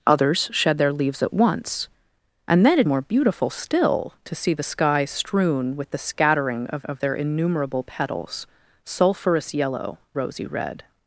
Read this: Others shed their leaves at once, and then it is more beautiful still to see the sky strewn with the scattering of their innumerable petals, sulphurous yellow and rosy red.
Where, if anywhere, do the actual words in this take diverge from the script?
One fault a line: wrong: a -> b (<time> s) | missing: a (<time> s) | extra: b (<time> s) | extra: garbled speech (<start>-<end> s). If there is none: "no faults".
missing: is (2.9 s)
extra: of (6.8 s)
missing: and (10.0 s)